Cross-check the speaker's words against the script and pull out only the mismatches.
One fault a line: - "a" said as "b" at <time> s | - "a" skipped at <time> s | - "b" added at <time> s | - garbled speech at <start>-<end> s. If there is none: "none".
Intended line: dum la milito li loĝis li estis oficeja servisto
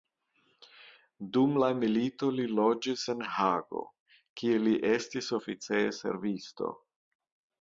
- "en hago kie" added at 3.2 s